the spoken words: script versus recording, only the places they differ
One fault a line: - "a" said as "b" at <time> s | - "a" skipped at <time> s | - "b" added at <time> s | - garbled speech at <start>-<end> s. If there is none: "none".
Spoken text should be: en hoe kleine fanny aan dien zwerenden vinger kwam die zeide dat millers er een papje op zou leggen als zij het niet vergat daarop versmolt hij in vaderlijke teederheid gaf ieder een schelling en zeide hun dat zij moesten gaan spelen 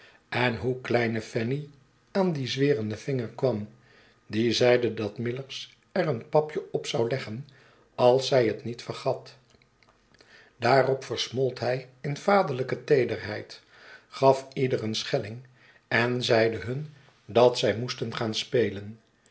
none